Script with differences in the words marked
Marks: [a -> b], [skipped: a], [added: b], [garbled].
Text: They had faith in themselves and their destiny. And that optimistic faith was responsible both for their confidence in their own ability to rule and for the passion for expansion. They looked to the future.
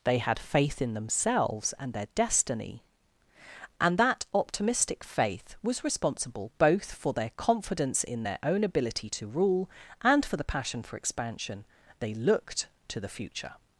They had faith in themselves and their destiny. And that optimistic faith was responsible both for their confidence in their own ability to rule and for the passion for expansion. They looked to the future.